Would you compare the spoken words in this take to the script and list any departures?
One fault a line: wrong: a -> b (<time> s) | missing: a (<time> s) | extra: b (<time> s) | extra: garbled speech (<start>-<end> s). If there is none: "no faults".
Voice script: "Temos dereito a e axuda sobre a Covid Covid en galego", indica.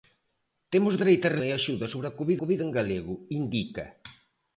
no faults